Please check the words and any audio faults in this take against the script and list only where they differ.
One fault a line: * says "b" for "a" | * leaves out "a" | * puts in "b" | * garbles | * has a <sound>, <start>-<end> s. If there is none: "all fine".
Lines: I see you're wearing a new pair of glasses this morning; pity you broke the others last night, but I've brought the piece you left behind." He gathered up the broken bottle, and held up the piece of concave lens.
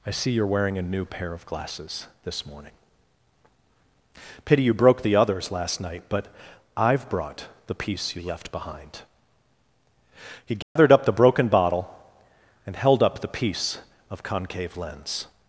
* has a dropout, 10.6-10.8 s